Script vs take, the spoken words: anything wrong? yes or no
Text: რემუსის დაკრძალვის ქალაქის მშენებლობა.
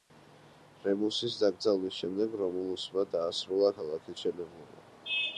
yes